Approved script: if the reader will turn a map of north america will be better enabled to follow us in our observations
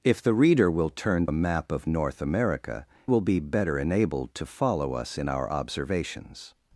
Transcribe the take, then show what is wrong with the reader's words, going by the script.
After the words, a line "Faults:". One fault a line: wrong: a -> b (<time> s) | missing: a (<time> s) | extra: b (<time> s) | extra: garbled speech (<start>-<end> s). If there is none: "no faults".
if the reader will turn a map of north america will be better enabled to follow us in our observations
Faults:
no faults